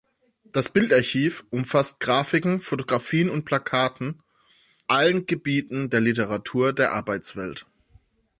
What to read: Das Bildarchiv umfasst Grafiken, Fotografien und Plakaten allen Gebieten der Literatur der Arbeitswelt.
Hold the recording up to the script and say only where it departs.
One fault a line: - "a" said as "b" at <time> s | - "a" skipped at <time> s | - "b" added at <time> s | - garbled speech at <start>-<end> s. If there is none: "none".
none